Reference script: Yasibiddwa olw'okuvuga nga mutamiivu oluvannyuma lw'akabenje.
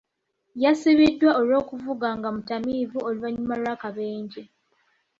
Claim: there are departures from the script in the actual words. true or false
false